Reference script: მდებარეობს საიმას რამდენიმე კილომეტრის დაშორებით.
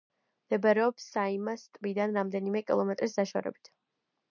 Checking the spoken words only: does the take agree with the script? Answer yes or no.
no